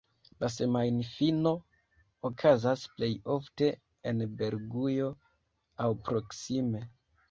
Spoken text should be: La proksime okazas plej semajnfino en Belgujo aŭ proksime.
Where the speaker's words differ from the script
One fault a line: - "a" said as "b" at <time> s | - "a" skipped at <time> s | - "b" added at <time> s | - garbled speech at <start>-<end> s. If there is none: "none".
- "proksime" said as "semajnfino" at 0.5 s
- "semajnfino" said as "ofte" at 3.4 s